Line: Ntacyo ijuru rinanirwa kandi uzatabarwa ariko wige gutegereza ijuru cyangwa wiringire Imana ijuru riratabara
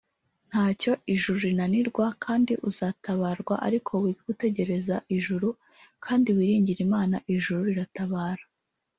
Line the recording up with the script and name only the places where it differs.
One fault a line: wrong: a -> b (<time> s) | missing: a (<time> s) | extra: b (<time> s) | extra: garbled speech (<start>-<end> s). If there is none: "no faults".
wrong: cyangwa -> kandi (6.0 s)